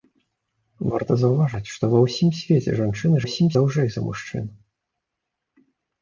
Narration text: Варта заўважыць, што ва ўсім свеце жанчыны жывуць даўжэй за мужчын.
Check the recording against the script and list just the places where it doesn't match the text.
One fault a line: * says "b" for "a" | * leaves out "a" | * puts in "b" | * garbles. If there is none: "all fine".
* says "ўсім" for "жывуць"